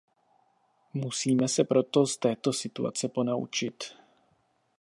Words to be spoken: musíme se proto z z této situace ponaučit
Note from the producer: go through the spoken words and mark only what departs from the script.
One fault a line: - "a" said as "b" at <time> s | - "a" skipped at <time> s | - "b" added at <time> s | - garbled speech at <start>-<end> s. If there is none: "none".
- "z" skipped at 2.2 s